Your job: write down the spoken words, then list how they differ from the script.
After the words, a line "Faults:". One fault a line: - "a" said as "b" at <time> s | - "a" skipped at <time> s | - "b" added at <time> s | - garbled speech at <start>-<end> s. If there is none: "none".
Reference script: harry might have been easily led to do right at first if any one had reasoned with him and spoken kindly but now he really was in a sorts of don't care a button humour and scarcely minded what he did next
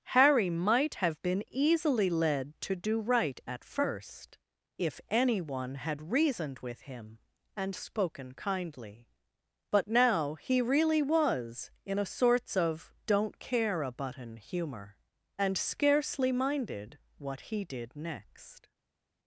harry might have been easily led to do right at first if any one had reasoned with him and spoken kindly but now he really was in a sorts of don't care a button humour and scarcely minded what he did next
Faults:
none